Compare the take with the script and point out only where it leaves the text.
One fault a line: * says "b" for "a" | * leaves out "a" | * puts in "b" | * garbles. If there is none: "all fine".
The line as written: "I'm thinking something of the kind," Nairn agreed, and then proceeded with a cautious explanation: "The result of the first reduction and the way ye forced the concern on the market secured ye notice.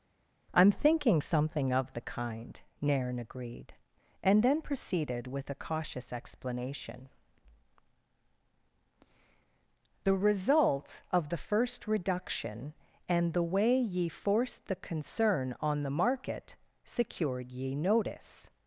all fine